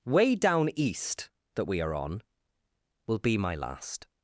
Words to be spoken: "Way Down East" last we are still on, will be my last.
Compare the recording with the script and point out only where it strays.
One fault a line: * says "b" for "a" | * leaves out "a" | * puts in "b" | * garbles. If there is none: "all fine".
* says "that" for "last"
* leaves out "still"